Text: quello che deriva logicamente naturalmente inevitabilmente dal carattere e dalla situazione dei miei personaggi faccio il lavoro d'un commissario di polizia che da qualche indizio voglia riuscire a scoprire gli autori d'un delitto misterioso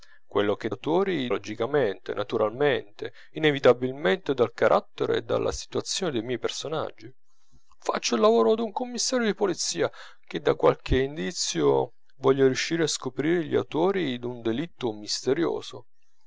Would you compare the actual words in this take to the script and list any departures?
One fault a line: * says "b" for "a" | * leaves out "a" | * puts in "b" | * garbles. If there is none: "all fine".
* says "autori" for "deriva"